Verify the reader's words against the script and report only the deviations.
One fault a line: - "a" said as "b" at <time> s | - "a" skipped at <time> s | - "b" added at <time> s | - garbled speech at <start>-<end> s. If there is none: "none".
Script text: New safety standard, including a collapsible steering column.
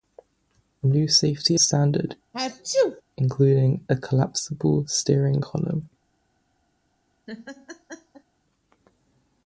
none